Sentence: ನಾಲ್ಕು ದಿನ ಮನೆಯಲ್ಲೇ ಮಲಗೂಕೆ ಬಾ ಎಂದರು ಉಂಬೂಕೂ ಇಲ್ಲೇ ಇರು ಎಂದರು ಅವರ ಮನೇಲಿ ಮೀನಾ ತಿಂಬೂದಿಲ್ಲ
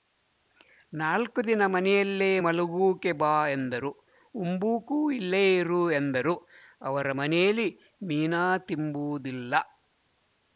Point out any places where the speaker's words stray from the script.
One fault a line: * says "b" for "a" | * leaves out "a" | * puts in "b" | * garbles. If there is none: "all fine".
all fine